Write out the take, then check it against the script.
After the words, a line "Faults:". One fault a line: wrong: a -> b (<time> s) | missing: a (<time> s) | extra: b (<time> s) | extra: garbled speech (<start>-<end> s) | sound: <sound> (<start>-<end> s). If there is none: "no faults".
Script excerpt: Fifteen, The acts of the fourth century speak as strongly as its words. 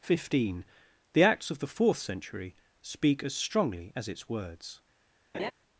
Fifteen, The acts of the fourth century speak as strongly as its words.
Faults:
sound: laugh (5.3-5.5 s)